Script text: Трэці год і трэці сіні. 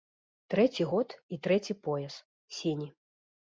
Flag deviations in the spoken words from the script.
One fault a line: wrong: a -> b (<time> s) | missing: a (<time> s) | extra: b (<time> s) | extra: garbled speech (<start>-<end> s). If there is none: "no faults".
extra: пояс (1.9 s)